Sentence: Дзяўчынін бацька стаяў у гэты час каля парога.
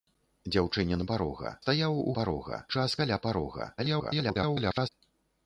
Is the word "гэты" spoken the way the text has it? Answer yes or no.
no